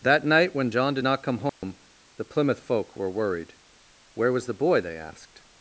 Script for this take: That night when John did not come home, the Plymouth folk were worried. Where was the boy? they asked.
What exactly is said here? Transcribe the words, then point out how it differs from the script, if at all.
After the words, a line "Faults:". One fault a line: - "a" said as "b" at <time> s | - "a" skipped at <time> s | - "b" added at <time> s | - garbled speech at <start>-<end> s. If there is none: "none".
That night when John did not come home, the Plymouth folk were worried. Where was the boy? they asked.
Faults:
none